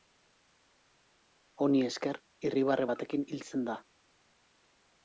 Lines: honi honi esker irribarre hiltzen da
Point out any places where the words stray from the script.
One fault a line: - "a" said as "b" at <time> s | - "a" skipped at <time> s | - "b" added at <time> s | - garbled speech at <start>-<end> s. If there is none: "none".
- "honi" skipped at 1.8 s
- "batekin" added at 2.9 s